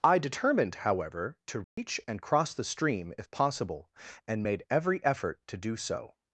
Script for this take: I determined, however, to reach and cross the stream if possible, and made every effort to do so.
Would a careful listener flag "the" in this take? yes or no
no